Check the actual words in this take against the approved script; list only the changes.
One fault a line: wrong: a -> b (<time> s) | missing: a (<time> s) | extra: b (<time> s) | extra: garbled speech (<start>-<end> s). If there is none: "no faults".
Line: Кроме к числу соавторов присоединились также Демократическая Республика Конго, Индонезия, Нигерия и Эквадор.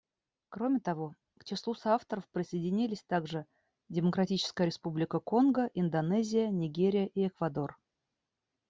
extra: того (0.8 s)